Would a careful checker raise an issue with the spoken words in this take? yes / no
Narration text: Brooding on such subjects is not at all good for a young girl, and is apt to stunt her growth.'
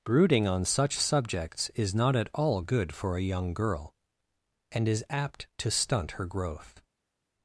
no